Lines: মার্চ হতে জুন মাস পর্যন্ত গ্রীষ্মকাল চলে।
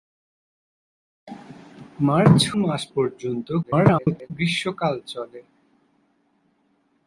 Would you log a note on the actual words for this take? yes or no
yes